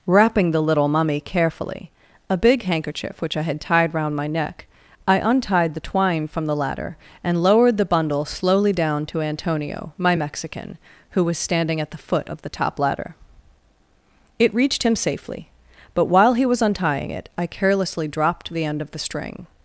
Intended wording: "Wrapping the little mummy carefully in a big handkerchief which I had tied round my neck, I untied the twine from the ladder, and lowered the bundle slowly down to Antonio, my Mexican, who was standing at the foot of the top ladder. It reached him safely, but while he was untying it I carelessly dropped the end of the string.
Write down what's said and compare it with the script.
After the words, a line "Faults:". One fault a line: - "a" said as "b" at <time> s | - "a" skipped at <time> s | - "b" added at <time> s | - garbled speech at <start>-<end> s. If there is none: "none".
"Wrapping the little mummy carefully a big handkerchief which I had tied round my neck, I untied the twine from the ladder, and lowered the bundle slowly down to Antonio, my Mexican, who was standing at the foot of the top ladder. It reached him safely, but while he was untying it I carelessly dropped the end of the string.
Faults:
- "in" skipped at 1.9 s